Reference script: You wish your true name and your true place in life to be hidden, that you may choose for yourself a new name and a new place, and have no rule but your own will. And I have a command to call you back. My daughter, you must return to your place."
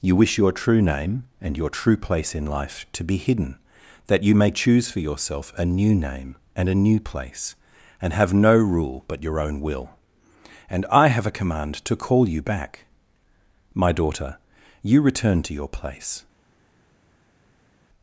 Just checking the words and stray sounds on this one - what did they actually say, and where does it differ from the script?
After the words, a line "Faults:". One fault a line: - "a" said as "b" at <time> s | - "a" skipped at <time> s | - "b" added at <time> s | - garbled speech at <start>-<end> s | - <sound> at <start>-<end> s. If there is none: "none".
You wish your true name and your true place in life to be hidden, that you may choose for yourself a new name and a new place, and have no rule but your own will. And I have a command to call you back. My daughter, you return to your place."
Faults:
- "must" skipped at 15.0 s